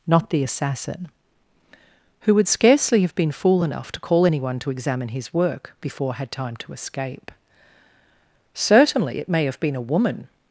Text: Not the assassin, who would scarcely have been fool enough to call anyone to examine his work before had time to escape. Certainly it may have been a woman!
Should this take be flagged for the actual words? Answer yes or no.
no